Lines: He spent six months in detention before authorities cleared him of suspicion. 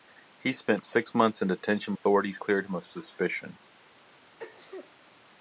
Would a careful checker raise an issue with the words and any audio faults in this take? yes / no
yes